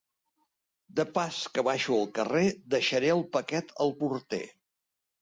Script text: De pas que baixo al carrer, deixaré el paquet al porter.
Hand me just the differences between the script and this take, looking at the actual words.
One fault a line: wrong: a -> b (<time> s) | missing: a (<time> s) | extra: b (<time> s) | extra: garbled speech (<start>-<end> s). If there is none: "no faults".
no faults